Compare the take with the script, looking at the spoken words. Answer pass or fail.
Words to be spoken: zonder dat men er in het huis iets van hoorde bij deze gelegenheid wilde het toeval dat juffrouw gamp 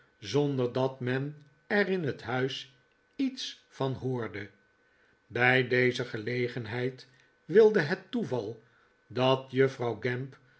pass